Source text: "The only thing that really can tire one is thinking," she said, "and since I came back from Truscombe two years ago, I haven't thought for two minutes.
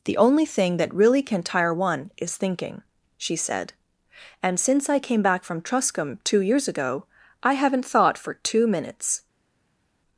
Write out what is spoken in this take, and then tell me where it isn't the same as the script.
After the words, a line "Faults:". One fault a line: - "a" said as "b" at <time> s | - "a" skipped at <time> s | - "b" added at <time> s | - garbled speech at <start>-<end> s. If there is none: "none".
"The only thing that really can tire one is thinking," she said, "and since I came back from Truscombe two years ago, I haven't thought for two minutes.
Faults:
none